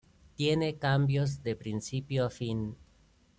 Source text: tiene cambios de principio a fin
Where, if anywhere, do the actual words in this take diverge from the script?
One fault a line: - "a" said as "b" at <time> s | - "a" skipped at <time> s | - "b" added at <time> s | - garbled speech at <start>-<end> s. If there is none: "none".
none